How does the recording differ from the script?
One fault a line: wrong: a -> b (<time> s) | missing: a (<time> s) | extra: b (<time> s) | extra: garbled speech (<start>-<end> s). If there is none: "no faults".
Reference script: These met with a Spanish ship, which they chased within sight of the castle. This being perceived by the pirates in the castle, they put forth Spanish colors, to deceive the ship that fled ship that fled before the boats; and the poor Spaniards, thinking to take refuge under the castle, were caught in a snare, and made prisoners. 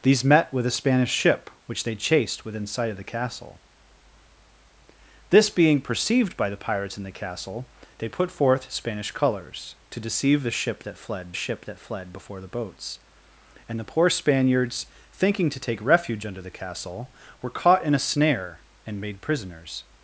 no faults